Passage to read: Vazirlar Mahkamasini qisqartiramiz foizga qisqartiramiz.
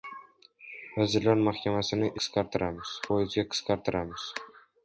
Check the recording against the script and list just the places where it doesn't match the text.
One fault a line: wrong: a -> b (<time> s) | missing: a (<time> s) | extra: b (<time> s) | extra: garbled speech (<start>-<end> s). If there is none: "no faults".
no faults